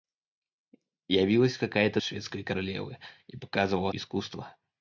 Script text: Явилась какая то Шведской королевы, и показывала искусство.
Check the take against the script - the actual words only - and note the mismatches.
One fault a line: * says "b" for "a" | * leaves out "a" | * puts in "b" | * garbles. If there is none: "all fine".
all fine